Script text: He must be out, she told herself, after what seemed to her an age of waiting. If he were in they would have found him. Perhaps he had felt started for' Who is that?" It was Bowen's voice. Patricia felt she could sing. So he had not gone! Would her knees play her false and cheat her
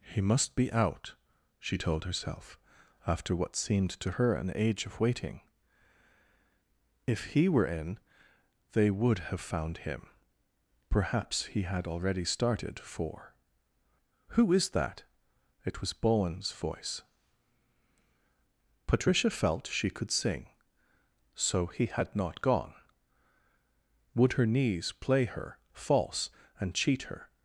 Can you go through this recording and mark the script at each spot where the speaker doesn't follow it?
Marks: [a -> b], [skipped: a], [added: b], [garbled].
He must be out, she told herself, after what seemed to her an age of waiting. If he were in they would have found him. Perhaps he had [felt -> already] started for' Who is that?" It was Bowen's voice. Patricia felt she could sing. So he had not gone! Would her knees play her false and cheat her